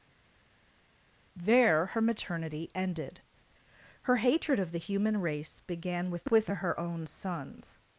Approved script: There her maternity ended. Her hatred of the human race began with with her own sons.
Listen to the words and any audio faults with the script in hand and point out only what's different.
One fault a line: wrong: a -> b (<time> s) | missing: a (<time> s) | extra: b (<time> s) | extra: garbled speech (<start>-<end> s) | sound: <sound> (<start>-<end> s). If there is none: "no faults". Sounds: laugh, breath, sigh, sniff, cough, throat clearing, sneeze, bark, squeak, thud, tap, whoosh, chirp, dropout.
no faults